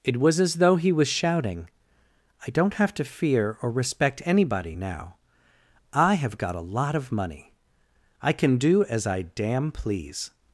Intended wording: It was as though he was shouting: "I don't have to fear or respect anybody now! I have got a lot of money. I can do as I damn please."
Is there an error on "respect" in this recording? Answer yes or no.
no